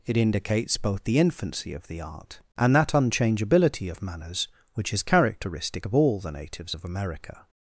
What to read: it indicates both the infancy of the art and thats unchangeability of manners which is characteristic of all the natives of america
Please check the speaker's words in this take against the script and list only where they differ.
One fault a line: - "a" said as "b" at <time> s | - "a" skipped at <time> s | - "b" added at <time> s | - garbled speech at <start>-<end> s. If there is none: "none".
- "thats" said as "that" at 2.8 s